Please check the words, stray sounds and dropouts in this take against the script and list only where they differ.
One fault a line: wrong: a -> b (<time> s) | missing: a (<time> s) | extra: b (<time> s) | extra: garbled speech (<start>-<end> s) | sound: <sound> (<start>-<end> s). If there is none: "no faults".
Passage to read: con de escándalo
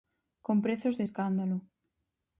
extra: prezos (0.6 s)